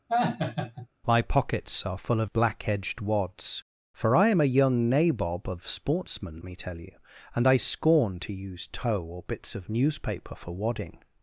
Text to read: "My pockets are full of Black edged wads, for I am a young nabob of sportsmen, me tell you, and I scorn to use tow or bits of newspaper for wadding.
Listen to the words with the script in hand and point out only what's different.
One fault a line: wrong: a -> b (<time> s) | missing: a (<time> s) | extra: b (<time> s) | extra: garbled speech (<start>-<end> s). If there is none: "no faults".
no faults